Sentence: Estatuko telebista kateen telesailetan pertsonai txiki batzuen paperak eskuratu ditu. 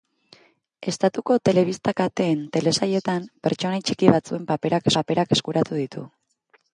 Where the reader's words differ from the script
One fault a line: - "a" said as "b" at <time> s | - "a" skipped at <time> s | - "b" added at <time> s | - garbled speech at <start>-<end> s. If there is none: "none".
- "paperak" added at 5.0 s